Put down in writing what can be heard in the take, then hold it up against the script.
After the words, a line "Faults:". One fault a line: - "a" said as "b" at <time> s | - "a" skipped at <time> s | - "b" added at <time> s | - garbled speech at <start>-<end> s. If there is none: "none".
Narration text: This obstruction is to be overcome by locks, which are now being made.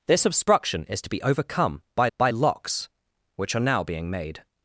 This obstruction is to be overcome by by locks, which are now being made.
Faults:
- "by" added at 2.2 s